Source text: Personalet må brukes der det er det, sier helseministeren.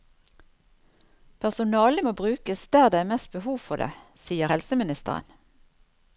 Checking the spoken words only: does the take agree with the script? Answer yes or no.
no